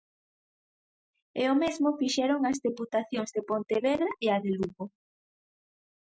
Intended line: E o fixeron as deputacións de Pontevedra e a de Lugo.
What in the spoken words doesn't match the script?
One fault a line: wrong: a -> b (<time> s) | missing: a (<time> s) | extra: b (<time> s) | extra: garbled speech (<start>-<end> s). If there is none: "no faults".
extra: mesmo (1.6 s)